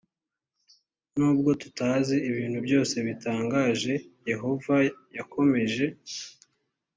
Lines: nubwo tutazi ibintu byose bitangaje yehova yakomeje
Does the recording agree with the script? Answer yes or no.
yes